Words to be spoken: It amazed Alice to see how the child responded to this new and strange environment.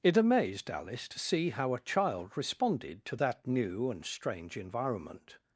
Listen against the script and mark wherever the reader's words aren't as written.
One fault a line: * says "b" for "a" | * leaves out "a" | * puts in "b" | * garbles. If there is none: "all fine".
* says "a" for "the"
* says "that" for "this"